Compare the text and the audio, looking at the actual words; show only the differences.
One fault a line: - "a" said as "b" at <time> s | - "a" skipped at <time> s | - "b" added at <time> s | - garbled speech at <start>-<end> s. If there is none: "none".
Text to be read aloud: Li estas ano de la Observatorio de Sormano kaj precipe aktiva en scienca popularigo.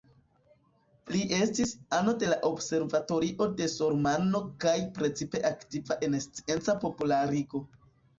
- "estas" said as "estis" at 1.4 s